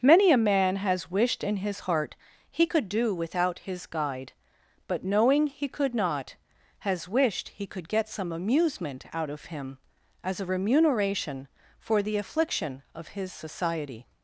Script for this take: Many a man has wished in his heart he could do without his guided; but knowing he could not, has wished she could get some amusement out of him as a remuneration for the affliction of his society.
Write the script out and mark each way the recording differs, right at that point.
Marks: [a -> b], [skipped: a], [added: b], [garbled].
Many a man has wished in his heart he could do without his [guided; -> guide] but knowing he could not, has wished [she -> he] could get some amusement out of him as a remuneration for the affliction of his society.